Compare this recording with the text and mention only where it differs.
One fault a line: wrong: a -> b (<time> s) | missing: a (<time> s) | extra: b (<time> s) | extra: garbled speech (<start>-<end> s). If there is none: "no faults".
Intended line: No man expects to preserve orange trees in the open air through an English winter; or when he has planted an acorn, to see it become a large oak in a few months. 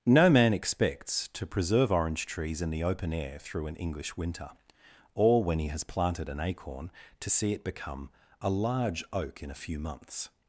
no faults